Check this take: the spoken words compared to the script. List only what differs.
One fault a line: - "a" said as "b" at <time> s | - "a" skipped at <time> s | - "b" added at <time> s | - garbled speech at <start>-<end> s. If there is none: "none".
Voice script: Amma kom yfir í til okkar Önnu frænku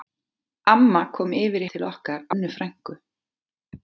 none